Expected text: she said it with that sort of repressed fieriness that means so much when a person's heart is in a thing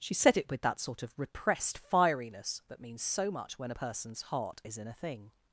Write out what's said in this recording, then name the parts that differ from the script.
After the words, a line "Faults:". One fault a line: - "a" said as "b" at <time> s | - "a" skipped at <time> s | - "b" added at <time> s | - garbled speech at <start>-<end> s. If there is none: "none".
she said it with that sort of repressed fieriness that means so much when a person's heart is in a thing
Faults:
none